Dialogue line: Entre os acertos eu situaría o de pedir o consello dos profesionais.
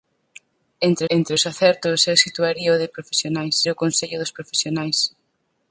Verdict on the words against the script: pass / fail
fail